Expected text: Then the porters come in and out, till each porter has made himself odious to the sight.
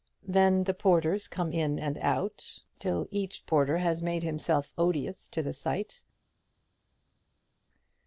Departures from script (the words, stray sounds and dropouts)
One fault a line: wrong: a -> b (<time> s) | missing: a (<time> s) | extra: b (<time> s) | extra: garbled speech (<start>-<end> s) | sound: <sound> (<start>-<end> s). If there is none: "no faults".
no faults